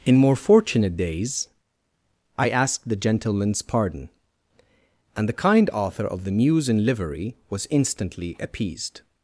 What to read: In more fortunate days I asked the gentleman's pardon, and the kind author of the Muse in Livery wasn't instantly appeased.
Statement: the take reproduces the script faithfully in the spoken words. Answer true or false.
false